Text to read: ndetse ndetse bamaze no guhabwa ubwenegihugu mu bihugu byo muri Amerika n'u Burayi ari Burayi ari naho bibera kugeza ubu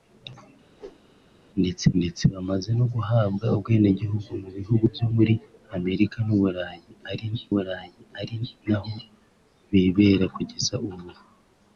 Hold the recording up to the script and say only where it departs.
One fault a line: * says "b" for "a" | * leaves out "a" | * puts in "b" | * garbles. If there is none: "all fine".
all fine